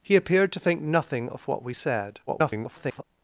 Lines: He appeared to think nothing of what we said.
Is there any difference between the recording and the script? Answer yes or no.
yes